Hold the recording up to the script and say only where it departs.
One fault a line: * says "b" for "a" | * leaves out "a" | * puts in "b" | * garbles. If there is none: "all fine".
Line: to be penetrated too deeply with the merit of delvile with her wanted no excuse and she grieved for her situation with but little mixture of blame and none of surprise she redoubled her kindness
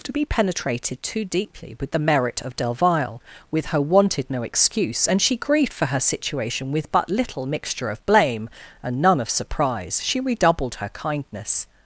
all fine